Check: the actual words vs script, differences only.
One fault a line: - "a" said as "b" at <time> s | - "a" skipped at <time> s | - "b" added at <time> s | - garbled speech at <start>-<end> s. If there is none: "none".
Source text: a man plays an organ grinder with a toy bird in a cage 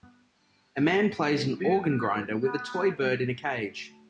none